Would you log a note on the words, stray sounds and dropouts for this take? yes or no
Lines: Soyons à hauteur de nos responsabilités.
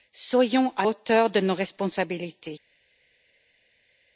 no